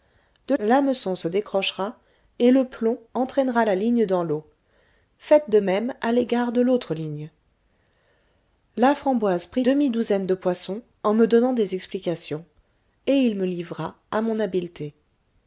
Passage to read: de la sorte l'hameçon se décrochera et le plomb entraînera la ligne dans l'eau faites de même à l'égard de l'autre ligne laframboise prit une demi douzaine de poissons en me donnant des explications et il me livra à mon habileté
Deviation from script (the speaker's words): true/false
true